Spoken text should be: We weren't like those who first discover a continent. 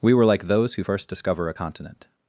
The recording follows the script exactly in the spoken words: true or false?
false